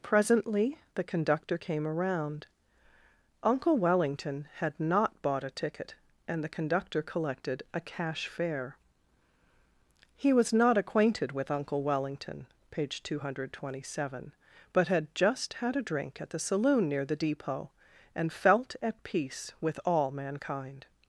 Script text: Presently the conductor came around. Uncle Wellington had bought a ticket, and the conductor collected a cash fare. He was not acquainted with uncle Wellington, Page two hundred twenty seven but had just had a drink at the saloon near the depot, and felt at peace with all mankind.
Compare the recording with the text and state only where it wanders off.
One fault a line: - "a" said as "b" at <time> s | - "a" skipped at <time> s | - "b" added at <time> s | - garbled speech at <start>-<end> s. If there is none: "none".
- "not" added at 4.8 s